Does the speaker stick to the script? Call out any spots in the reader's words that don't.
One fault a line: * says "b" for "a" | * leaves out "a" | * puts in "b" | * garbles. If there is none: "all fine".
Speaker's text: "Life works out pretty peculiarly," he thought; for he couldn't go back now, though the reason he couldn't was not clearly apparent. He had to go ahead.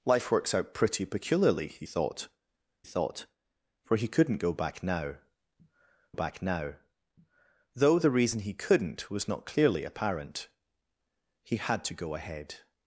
* puts in "thought"
* puts in "back now"